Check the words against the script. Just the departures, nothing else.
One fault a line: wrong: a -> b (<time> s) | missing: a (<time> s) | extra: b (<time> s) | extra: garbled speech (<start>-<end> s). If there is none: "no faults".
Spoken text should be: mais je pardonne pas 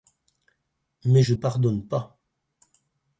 no faults